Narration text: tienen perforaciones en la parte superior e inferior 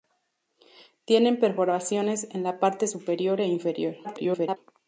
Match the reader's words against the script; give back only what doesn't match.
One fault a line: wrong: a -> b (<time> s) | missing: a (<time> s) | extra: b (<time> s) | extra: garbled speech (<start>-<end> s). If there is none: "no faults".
extra: garbled speech (4.0-4.6 s)